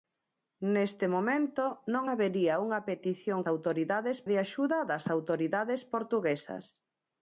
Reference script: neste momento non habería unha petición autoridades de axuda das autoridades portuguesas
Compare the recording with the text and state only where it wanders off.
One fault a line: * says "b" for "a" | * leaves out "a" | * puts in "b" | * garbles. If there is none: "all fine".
all fine